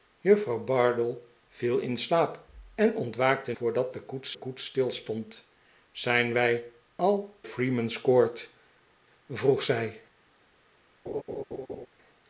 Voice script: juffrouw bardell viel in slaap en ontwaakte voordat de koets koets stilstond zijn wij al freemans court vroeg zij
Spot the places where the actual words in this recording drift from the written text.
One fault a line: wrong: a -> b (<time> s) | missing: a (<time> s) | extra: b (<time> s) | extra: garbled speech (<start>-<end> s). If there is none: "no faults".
no faults